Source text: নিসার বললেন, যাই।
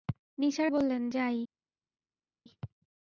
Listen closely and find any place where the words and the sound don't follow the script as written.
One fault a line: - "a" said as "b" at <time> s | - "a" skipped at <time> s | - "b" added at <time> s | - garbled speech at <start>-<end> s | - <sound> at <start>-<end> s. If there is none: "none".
none